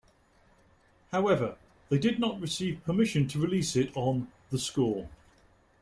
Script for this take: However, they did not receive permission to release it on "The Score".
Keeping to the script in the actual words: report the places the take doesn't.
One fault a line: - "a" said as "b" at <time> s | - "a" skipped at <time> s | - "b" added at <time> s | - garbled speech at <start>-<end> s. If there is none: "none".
none